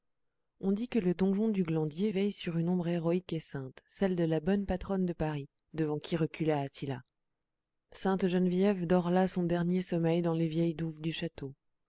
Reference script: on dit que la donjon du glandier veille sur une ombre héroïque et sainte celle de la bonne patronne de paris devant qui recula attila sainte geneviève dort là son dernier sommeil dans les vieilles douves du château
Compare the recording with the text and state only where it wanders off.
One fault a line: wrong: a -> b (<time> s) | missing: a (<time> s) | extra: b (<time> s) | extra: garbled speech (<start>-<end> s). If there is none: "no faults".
wrong: la -> le (1.0 s)